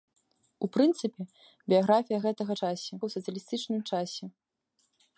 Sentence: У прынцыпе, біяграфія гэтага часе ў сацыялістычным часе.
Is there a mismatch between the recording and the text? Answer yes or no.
no